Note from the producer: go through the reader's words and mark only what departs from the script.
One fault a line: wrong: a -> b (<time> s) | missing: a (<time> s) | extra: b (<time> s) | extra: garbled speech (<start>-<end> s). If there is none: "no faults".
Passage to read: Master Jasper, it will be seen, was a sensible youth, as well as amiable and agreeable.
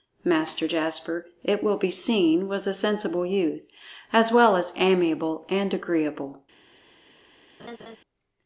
no faults